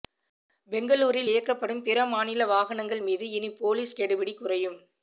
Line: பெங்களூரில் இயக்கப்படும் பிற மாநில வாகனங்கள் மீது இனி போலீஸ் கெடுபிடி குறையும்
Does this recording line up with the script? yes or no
yes